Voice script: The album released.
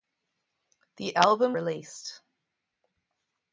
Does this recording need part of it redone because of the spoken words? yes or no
no